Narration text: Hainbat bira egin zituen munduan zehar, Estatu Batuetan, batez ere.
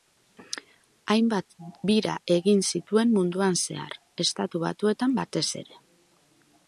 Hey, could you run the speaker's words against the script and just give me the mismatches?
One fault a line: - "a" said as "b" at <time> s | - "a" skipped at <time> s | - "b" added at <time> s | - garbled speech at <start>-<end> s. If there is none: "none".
none